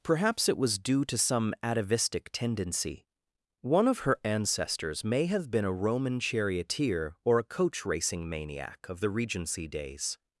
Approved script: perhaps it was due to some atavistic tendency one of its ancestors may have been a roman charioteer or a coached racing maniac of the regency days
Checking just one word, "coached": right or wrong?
wrong